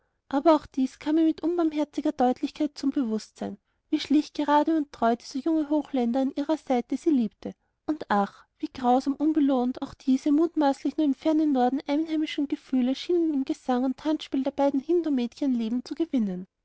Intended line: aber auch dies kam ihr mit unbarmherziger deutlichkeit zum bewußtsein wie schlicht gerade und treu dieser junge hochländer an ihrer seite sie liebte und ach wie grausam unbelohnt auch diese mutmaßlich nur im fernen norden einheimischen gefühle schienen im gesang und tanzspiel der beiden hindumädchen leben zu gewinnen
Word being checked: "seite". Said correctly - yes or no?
yes